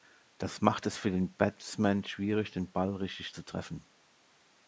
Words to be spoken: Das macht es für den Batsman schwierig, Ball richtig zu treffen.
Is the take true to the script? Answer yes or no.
no